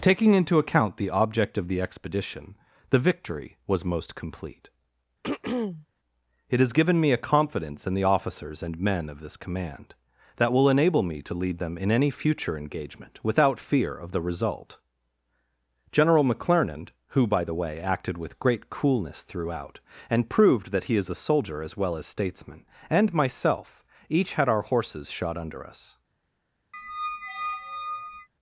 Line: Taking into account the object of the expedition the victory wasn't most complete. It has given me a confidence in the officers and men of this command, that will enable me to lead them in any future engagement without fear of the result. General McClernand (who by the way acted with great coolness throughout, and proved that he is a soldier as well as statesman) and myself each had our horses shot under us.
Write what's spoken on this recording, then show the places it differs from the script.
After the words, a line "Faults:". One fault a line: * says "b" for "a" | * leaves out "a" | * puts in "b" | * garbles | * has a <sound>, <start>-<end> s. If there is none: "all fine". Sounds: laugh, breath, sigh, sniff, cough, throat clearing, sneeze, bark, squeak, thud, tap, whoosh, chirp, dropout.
Taking into account the object of the expedition the victory was most complete. It has given me a confidence in the officers and men of this command, that will enable me to lead them in any future engagement without fear of the result. General McClernand (who by the way acted with great coolness throughout, and proved that he is a soldier as well as statesman) and myself each had our horses shot under us.
Faults:
* says "was" for "wasn't"
* has a throat clearing, 5.2-5.9 s
* has a squeak, 26.7-28.3 s